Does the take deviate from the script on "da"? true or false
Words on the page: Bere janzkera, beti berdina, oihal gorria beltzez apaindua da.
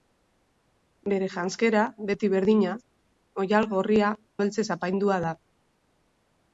false